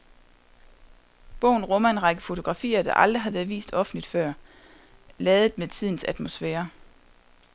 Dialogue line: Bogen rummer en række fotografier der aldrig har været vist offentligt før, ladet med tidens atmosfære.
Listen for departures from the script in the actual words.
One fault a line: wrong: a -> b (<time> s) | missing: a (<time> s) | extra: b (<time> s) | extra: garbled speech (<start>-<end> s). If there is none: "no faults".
no faults